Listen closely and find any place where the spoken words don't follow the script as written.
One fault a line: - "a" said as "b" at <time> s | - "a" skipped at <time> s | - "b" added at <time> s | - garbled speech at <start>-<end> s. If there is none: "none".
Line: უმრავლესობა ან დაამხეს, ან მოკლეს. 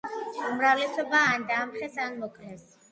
none